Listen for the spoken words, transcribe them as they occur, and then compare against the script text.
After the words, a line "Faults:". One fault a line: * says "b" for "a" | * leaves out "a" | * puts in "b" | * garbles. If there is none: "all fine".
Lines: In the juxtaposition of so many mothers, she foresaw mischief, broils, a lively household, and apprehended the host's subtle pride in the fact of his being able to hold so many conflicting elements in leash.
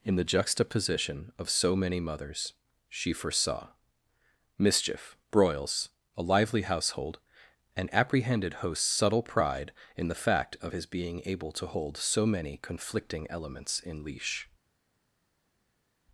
In the juxtaposition of so many mothers, she foresaw mischief, broils, a lively household, and apprehended host's subtle pride in the fact of his being able to hold so many conflicting elements in leash.
Faults:
* leaves out "the"